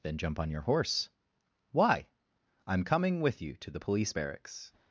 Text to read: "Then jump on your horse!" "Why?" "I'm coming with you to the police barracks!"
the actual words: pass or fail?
pass